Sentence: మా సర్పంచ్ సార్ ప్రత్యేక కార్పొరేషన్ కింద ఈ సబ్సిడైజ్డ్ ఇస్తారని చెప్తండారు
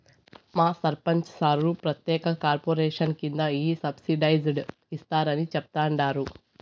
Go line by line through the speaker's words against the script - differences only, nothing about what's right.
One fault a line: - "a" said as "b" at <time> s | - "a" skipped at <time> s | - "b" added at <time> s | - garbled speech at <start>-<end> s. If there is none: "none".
none